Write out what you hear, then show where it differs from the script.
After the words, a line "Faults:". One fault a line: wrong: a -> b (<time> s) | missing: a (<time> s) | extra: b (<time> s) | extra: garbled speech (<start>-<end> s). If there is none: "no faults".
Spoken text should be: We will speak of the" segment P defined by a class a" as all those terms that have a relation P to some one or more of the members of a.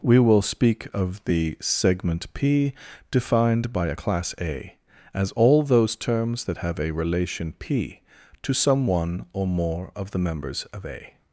We will speak of the" segment P defined by a class a" as all those terms that have a relation P to some one or more of the members of a.
Faults:
no faults